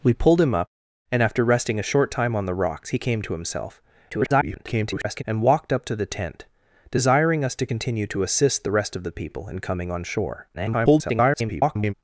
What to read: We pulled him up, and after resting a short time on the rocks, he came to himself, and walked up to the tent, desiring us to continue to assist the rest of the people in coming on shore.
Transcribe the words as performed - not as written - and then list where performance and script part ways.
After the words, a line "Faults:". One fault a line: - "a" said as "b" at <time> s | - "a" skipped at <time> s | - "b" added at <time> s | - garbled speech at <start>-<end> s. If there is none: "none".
We pulled him up, and after resting a short time on the rocks, he came to himself, [garbled] and walked up to the tent, desiring us to continue to assist the rest of the people in coming on shore. [garbled]
Faults:
- garbled speech at 4.1-5.2 s
- garbled speech at 10.5-11.9 s